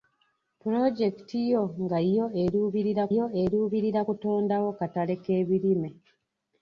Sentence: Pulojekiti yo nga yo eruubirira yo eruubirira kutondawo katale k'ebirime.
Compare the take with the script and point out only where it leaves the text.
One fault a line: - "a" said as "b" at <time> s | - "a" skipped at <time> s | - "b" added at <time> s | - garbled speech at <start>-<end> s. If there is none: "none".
none